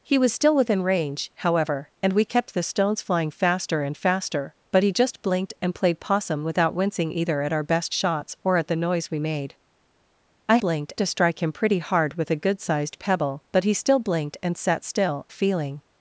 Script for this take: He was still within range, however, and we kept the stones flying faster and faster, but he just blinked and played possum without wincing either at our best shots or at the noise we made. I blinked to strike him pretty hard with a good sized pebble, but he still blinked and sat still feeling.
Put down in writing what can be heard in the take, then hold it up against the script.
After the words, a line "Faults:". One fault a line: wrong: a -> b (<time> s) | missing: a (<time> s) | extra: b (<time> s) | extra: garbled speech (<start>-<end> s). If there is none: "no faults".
He was still within range, however, and we kept the stones flying faster and faster, but he just blinked and played possum without wincing either at our best shots or at the noise we made. I blinked to strike him pretty hard with a good sized pebble, but he still blinked and sat still feeling.
Faults:
no faults